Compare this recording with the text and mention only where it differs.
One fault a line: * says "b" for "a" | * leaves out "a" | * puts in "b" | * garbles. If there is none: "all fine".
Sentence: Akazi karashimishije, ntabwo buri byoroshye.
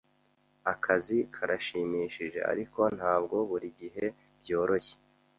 * puts in "ariko"
* puts in "gihe"